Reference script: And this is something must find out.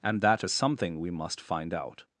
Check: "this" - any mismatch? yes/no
yes